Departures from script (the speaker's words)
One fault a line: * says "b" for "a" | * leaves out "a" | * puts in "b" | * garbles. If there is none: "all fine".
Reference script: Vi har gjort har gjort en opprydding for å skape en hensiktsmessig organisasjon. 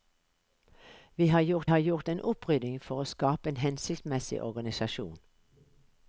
all fine